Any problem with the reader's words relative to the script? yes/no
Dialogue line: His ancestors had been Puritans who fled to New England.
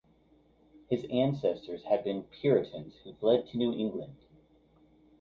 no